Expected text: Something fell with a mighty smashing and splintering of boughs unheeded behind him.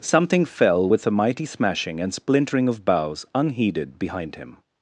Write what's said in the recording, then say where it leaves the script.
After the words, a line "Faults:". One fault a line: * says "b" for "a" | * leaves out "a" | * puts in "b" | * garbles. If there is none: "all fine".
Something fell with a mighty smashing and splintering of boughs unheeded behind him.
Faults:
all fine